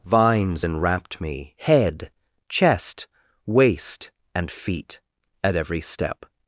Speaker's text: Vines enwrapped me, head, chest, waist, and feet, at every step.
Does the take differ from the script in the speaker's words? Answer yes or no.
no